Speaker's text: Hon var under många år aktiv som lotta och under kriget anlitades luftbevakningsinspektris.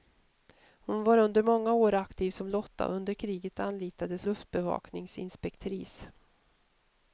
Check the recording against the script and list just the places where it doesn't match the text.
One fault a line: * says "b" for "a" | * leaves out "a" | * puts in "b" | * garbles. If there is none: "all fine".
all fine